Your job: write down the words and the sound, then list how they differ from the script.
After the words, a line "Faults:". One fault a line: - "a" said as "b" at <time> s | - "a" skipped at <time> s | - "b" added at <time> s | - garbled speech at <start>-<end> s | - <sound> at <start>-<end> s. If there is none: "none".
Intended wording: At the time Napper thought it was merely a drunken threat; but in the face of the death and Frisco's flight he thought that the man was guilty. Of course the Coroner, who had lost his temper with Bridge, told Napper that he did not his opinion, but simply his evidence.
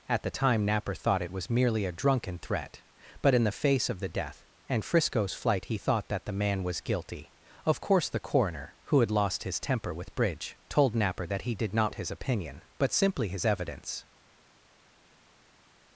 At the time Napper thought it was merely a drunken threat; but in the face of the death and Frisco's flight he thought that the man was guilty. Of course the Coroner, who had lost his temper with Bridge, told Napper that he did not his opinion, but simply his evidence.
Faults:
none